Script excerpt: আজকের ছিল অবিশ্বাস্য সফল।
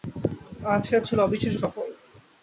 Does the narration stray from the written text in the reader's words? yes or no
no